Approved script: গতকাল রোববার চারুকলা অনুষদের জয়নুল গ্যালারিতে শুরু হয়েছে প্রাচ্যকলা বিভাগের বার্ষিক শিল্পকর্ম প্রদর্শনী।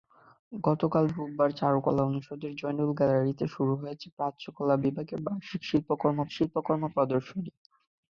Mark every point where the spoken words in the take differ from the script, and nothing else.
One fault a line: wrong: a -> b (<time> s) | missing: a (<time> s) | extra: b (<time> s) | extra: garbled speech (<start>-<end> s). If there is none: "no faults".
extra: শিল্পকর্ম (6.3 s)